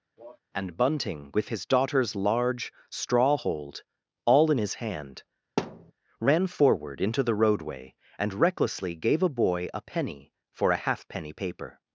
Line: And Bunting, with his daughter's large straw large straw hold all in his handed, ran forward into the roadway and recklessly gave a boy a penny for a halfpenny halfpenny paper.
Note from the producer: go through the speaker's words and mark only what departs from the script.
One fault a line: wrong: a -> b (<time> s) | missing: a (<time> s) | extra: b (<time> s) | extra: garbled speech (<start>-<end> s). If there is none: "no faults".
missing: large straw (3.4 s)
wrong: handed -> hand (4.7 s)
missing: halfpenny (11.3 s)